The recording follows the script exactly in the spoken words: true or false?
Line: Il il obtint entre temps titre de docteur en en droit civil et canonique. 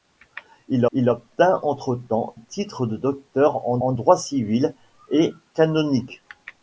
true